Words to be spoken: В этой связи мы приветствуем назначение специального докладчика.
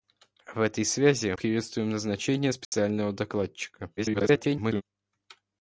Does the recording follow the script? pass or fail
fail